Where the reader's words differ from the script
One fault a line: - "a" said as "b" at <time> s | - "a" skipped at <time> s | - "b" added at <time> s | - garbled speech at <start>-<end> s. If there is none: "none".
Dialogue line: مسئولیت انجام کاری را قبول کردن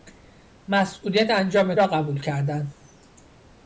- "کاری" skipped at 1.7 s